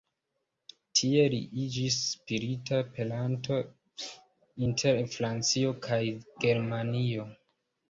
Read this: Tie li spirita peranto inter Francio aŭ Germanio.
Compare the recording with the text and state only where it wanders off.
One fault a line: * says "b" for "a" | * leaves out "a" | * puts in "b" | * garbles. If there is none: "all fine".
* puts in "iĝis"
* says "kaj" for "aŭ"